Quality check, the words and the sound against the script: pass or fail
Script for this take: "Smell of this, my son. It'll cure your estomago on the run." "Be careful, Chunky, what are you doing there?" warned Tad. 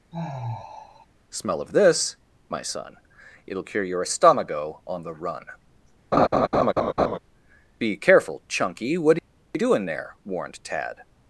fail